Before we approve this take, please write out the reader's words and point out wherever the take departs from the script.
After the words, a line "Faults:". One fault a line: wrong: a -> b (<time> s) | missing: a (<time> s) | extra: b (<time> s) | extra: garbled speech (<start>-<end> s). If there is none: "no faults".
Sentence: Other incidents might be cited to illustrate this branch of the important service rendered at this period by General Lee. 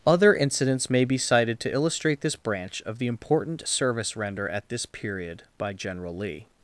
Other incidents may be cited to illustrate this branch of the important service render at this period by General Lee.
Faults:
wrong: might -> may (0.9 s)
wrong: rendered -> render (4.2 s)